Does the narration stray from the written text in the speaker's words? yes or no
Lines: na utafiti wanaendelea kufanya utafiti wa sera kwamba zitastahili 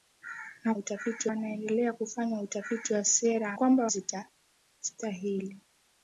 no